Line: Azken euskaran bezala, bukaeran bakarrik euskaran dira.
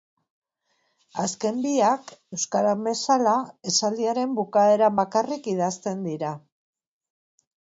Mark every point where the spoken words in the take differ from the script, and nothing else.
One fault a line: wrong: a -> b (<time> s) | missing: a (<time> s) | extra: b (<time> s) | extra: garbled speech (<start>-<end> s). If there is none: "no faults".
extra: biak (1.6 s)
extra: esaldiaren (3.7 s)
wrong: euskaran -> idazten (5.6 s)